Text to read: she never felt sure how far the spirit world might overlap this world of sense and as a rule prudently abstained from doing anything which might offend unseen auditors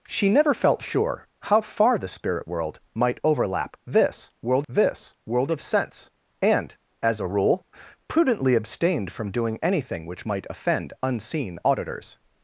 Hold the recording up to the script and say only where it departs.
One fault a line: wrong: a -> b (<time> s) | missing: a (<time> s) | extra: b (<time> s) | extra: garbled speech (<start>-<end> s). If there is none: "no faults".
extra: this world (4.7 s)